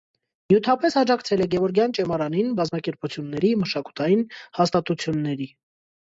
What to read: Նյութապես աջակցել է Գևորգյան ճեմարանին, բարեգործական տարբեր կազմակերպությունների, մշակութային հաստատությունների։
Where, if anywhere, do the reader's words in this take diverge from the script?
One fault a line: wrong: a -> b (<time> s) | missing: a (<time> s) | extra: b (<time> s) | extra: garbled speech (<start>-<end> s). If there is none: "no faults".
missing: բարեգործական տարբեր (2.5 s)